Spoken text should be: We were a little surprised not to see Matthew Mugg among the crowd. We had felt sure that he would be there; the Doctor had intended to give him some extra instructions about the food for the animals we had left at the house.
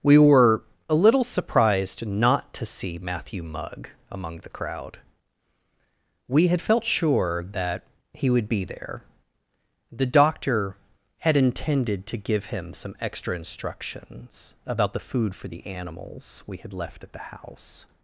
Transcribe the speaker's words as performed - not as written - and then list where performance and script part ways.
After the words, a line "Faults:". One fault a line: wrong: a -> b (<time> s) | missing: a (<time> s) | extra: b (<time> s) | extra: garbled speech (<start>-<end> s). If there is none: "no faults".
We were a little surprised not to see Matthew Mugg among the crowd. We had felt sure that he would be there; the Doctor had intended to give him some extra instructions about the food for the animals we had left at the house.
Faults:
no faults